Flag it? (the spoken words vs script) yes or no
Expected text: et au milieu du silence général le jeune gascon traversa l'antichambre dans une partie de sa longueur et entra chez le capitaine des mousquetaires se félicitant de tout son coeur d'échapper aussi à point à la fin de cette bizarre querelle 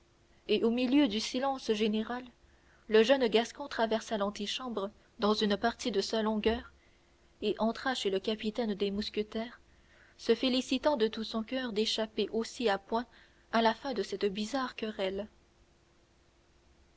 no